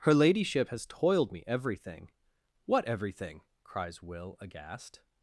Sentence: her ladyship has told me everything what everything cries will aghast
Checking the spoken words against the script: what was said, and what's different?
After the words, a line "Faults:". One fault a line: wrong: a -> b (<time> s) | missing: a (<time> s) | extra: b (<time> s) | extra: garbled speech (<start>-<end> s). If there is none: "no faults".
her ladyship has toiled me everything what everything cries will aghast
Faults:
wrong: told -> toiled (0.8 s)